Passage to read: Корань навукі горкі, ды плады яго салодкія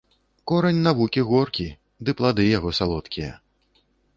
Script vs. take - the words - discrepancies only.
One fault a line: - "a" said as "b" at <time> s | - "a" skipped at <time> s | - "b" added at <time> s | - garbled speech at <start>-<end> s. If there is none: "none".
none